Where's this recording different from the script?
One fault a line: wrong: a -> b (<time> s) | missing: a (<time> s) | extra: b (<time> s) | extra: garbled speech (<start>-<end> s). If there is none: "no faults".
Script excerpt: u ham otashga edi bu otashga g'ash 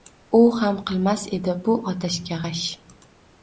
wrong: otashga -> qilmas (0.9 s)